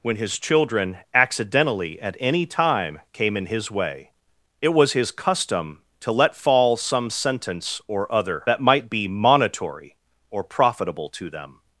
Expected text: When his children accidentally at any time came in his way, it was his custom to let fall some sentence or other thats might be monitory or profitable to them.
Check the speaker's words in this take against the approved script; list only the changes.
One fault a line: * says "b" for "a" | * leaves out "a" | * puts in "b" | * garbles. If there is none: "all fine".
* says "that" for "thats"